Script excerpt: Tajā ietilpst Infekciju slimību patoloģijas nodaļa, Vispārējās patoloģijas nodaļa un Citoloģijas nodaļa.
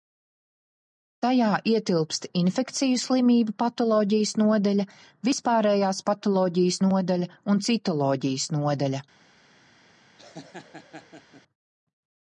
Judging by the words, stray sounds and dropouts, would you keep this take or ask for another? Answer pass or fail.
fail